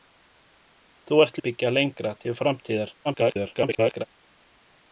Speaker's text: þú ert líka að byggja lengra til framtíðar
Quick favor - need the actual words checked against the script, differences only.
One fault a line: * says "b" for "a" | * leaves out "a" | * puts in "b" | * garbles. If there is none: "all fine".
* leaves out "líka"
* garbles